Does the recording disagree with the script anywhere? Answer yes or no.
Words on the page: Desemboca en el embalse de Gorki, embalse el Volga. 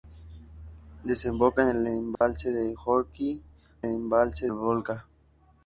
no